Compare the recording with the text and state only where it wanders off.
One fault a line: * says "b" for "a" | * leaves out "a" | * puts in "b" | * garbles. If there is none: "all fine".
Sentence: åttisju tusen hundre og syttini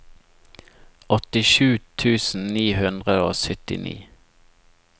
* puts in "ni"